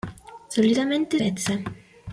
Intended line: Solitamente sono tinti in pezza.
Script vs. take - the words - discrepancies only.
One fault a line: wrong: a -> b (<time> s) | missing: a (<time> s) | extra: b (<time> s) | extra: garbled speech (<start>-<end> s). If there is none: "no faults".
missing: sono tinti in (1.2 s)